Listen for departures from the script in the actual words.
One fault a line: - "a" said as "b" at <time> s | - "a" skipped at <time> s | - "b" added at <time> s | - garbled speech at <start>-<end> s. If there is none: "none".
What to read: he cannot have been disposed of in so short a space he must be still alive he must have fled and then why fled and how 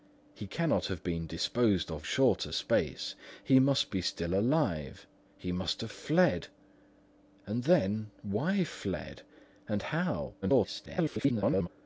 - "in so" skipped at 2.1 s
- garbled speech at 10.4-11.7 s